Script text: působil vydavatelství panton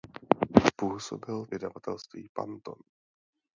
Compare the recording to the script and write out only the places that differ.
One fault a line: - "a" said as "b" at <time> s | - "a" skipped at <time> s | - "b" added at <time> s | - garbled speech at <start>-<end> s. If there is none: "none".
none